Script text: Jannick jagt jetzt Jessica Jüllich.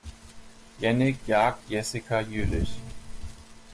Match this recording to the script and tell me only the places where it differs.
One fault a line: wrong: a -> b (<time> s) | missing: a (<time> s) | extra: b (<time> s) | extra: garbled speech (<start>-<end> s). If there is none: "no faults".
missing: jetzt (1.7 s)